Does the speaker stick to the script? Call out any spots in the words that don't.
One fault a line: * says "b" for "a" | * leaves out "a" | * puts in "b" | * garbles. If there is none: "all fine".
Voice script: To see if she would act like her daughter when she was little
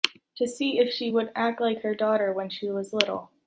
all fine